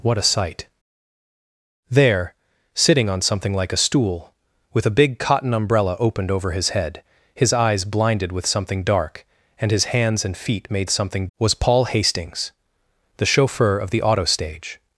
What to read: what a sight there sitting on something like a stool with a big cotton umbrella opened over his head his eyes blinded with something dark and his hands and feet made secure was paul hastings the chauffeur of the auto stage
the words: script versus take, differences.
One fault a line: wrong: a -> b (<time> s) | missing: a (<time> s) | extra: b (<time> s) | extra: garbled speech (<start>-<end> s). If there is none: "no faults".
wrong: secure -> something (10.9 s)